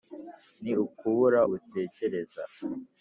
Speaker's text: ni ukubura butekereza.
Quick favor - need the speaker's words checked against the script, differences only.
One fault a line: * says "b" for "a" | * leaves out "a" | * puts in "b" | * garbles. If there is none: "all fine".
all fine